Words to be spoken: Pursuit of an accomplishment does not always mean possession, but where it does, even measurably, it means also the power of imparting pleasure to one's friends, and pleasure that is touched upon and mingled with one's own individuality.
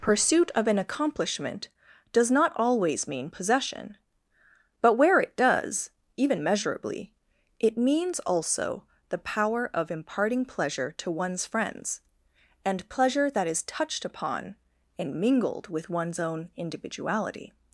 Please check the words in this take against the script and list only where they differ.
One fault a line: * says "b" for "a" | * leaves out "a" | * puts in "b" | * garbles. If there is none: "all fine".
all fine